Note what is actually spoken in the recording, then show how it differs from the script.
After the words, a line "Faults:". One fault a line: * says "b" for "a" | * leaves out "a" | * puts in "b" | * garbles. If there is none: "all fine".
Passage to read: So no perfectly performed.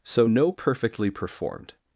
So no perfectly performed.
Faults:
all fine